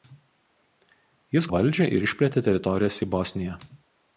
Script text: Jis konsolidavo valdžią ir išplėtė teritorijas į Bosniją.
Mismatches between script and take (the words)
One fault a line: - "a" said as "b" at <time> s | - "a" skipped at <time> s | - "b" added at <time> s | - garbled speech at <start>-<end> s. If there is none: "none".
- "konsolidavo" skipped at 1.5 s